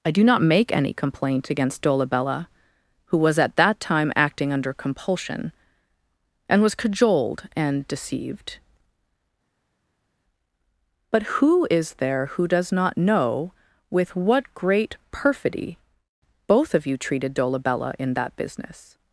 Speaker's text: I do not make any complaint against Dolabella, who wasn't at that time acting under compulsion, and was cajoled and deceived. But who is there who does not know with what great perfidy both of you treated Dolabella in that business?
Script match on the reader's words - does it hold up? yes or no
no